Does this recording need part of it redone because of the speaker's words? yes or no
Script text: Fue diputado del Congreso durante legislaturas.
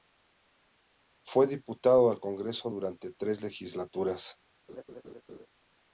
yes